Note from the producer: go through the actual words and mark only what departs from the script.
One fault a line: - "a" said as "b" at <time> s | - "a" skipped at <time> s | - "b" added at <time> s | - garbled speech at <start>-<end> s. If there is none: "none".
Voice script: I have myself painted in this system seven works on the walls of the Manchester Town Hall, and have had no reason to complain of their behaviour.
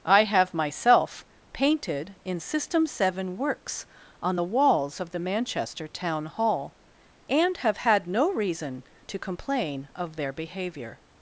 - "this" skipped at 2.4 s